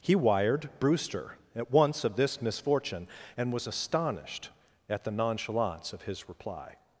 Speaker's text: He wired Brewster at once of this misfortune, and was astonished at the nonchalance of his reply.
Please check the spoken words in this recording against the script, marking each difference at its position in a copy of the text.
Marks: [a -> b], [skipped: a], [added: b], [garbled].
He wired Brewster at once of this misfortune, and was astonished at the nonchalance of his reply.